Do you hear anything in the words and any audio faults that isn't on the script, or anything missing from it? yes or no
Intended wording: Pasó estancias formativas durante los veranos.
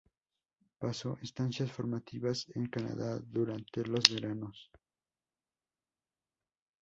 yes